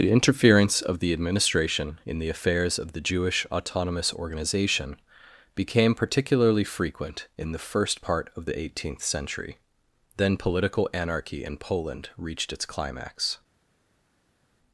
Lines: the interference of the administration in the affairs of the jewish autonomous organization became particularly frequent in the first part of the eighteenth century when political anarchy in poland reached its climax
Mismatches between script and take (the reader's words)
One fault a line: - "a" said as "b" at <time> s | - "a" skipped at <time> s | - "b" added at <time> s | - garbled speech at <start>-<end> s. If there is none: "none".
- "when" said as "then" at 10.2 s